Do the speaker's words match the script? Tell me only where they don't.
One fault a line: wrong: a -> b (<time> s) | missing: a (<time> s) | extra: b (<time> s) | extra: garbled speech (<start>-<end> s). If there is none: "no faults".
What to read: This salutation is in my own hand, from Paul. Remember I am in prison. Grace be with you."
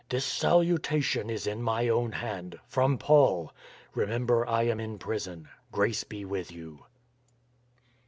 no faults